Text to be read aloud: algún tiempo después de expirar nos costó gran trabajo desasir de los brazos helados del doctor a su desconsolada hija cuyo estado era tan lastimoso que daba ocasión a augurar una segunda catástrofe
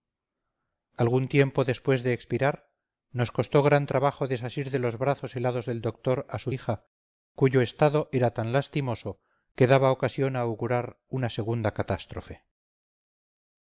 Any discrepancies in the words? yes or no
yes